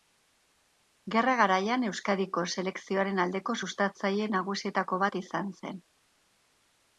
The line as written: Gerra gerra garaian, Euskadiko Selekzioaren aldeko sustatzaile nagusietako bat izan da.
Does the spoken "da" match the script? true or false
false